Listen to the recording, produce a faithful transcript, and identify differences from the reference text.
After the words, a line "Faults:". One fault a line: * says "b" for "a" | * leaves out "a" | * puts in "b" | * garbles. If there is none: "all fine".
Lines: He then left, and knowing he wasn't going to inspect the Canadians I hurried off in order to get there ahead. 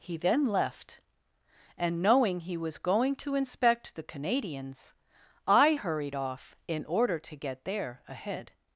He then left, and knowing he was going to inspect the Canadians I hurried off in order to get there ahead.
Faults:
* says "was" for "wasn't"